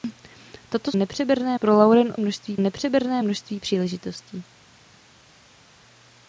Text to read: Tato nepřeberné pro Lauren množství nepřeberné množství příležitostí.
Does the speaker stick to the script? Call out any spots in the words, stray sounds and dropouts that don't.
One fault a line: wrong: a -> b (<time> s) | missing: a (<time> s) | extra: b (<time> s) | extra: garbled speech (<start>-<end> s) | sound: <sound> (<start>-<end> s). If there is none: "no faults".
no faults